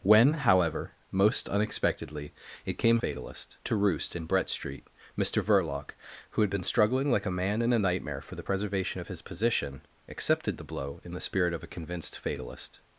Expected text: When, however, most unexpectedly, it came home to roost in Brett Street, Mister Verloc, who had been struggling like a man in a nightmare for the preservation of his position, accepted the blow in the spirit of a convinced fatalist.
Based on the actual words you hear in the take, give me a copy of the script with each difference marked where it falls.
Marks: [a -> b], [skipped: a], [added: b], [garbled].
When, however, most unexpectedly, it came [home -> fatalist] to roost in Brett Street, Mister Verloc, who had been struggling like a man in a nightmare for the preservation of his position, accepted the blow in the spirit of a convinced fatalist.